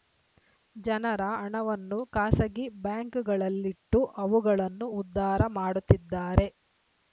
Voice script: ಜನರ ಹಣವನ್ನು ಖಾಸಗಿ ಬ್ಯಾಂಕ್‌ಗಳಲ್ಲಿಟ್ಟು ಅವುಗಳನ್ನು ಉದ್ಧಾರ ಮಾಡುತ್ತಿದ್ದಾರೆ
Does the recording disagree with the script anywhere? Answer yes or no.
no